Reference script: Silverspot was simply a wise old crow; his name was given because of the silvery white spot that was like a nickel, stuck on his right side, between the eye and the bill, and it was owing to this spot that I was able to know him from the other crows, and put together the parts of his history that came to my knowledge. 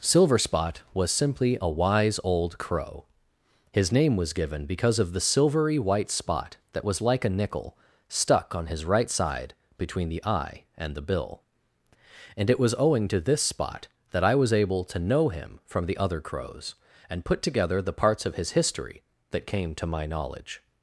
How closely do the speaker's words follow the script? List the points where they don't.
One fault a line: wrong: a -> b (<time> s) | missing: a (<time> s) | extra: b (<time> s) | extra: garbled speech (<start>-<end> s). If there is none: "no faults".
no faults